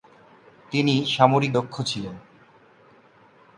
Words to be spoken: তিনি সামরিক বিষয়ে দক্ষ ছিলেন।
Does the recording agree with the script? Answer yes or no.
no